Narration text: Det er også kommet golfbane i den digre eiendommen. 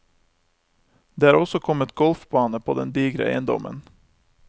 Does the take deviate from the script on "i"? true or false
true